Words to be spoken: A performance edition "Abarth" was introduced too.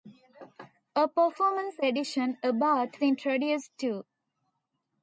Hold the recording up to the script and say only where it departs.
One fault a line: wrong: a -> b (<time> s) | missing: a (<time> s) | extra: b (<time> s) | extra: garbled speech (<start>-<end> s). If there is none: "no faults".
missing: was (3.0 s)